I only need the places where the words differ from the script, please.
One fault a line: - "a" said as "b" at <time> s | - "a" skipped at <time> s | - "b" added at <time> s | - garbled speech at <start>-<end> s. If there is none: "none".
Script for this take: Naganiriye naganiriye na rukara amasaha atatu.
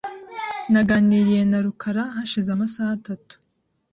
- "naganiriye" skipped at 1.4 s
- "hashize" added at 2.1 s